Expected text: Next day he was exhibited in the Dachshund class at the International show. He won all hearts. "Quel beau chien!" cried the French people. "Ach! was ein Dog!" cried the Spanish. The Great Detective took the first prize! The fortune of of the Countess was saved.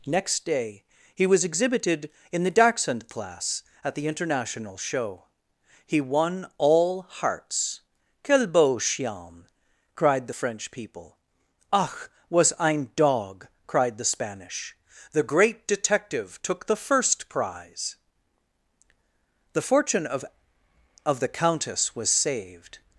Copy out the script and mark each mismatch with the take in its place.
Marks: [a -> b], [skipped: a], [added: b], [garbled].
Next day he was exhibited in the Dachshund class at the International show. He won all hearts. "Quel beau chien!" cried the French people. "Ach! was ein Dog!" cried the Spanish. The Great Detective took the first prize! The fortune of of the Countess was saved.